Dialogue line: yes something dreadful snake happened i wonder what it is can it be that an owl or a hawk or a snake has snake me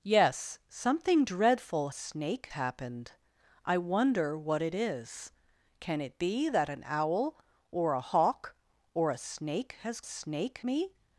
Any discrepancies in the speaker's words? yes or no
no